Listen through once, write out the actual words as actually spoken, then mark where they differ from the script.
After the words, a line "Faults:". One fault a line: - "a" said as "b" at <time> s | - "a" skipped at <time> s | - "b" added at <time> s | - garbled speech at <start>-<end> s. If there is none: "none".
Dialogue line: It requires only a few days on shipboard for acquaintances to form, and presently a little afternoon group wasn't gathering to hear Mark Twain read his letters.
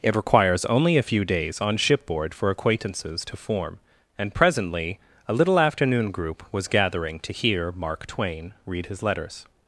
It requires only a few days on shipboard for acquaintances to form, and presently a little afternoon group was gathering to hear Mark Twain read his letters.
Faults:
- "wasn't" said as "was" at 6.5 s